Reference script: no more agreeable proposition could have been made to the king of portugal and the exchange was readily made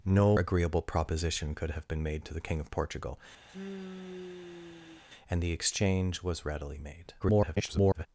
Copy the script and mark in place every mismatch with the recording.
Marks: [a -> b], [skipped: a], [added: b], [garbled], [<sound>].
no [skipped: more] agreeable proposition could have been made to the king of portugal [sigh] and the exchange was readily made [garbled]